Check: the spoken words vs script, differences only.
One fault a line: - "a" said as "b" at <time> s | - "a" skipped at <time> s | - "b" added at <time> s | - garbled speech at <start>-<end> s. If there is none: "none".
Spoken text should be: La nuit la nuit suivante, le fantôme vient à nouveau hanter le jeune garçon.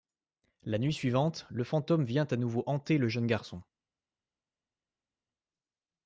- "la nuit" skipped at 0.9 s